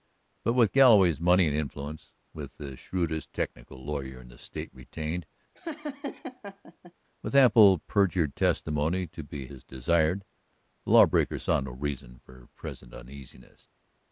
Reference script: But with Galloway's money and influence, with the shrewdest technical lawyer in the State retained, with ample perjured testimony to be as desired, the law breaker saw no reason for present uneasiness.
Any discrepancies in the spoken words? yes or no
no